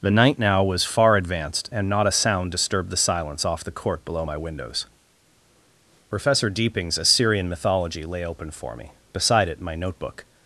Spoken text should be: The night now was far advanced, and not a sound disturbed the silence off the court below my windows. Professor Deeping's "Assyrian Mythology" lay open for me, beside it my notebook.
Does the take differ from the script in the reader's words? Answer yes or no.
no